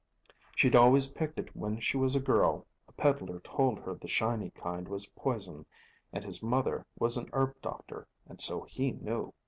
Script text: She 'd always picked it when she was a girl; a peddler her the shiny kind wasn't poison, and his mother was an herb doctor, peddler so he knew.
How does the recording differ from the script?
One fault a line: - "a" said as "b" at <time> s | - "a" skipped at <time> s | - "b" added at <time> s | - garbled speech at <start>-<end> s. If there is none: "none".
- "told" added at 3.4 s
- "wasn't" said as "was" at 4.9 s
- "peddler" said as "and" at 8.2 s